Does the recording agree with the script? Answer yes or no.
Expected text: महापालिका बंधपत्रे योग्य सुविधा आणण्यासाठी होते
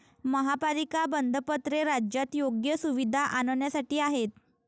no